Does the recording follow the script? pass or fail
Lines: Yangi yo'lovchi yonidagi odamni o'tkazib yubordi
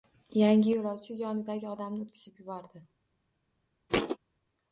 pass